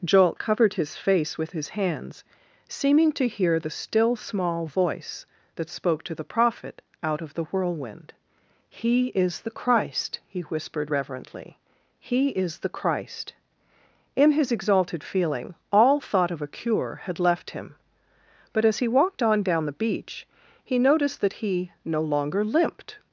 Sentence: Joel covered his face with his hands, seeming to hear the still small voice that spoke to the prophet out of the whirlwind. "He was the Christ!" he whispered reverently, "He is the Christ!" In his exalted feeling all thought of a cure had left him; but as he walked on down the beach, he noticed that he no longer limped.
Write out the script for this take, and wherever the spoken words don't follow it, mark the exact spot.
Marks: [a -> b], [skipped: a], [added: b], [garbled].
Joel covered his face with his hands, seeming to hear the still small voice that spoke to the prophet out of the whirlwind. "He [was -> is] the Christ!" he whispered reverently, "He is the Christ!" In his exalted feeling all thought of a cure had left him; but as he walked on down the beach, he noticed that he no longer limped.